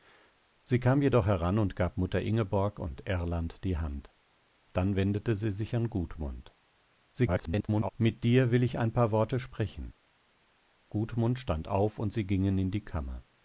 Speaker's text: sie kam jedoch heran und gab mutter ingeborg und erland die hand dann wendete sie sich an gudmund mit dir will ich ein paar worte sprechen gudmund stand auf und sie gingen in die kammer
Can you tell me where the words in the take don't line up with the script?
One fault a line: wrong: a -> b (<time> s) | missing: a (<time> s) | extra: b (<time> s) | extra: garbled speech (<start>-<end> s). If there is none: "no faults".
extra: garbled speech (7.1-7.9 s)